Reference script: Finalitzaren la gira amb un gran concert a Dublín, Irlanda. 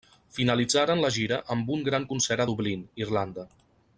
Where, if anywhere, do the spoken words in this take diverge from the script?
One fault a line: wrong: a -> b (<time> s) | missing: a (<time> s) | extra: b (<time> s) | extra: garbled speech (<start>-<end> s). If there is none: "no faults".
no faults